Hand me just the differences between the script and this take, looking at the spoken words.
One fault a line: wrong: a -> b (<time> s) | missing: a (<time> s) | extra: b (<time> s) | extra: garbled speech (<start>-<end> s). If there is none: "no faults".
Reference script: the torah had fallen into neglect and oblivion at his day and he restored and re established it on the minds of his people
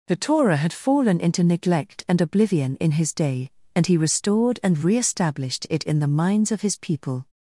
wrong: at -> in (2.8 s)
wrong: on -> in (5.8 s)